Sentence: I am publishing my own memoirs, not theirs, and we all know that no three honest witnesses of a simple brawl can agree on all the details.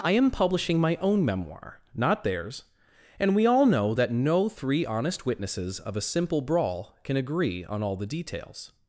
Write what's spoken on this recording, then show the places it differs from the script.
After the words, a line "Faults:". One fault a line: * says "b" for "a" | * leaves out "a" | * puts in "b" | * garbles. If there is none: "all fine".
I am publishing my own memoir, not theirs, and we all know that no three honest witnesses of a simple brawl can agree on all the details.
Faults:
* says "memoir" for "memoirs"